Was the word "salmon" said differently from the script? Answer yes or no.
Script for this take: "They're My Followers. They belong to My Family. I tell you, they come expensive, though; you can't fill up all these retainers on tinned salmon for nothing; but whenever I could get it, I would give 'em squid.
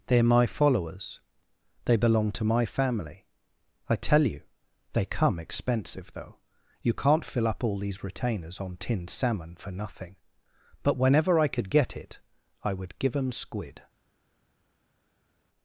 no